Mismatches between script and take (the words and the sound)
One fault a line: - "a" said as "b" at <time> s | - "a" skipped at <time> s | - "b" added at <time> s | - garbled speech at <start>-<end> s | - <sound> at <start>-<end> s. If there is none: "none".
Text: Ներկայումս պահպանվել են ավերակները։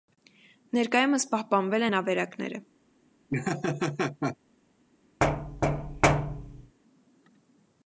- laugh at 3.3-4.4 s
- thud at 5.2-6.8 s